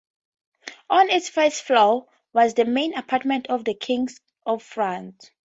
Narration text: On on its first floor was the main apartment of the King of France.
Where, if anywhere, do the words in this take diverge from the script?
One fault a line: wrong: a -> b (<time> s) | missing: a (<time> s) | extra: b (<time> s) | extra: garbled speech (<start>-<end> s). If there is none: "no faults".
missing: on (1.1 s)